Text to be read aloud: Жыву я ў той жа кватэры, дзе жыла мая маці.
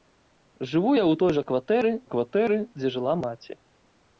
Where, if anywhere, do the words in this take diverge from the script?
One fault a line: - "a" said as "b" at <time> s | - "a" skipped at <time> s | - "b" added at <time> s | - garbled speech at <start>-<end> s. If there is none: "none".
- "кватэры" added at 2.1 s
- "мая" skipped at 3.1 s